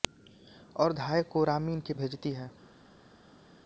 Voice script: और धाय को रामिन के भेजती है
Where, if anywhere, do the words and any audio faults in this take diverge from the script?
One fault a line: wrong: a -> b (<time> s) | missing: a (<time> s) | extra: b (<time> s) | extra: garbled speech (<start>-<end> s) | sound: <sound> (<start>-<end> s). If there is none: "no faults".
no faults